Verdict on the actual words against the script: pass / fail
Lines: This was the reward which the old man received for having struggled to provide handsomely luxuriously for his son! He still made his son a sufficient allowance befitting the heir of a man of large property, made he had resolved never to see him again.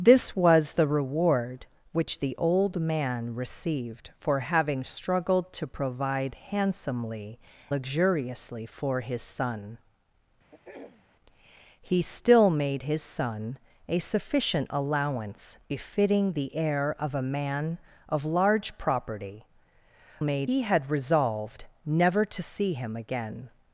pass